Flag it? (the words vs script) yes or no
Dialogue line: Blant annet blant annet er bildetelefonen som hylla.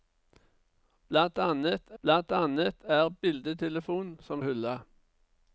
no